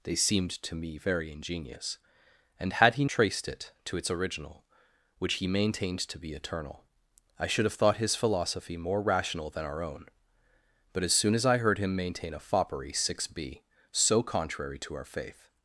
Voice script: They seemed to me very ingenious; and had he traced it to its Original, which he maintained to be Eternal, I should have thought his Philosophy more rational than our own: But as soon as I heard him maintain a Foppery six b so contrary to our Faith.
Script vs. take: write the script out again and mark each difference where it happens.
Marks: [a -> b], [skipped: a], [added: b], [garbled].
They seemed to me very ingenious; and had he traced it to its Original, which he maintained to be Eternal, I should have thought his Philosophy more rational than our own: But as soon as I heard him maintain a Foppery six b so contrary to our Faith.